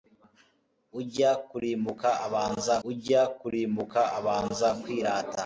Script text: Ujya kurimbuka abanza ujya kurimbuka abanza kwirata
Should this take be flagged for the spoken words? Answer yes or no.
no